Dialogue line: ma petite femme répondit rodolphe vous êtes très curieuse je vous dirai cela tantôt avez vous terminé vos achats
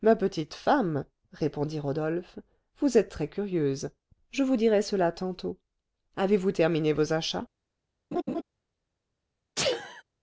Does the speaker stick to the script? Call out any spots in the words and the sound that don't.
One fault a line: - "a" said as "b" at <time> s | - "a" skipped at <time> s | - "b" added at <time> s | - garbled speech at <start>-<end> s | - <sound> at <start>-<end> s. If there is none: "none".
- laugh at 8.1-8.4 s
- sneeze at 9.6-10.0 s